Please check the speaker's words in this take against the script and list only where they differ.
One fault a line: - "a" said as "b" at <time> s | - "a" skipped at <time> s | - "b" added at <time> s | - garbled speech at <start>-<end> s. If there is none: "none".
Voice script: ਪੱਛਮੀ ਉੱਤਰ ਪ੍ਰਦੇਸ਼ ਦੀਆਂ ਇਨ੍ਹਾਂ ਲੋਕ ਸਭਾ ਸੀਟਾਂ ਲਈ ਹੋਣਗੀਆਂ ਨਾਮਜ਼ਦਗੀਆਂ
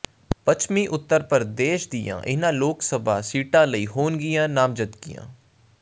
none